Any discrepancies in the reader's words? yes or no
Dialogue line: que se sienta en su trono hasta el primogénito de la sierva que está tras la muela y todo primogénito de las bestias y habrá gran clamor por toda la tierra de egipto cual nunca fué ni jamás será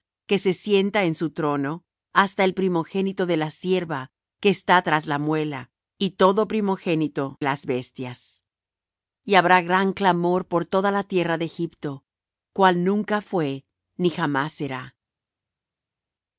yes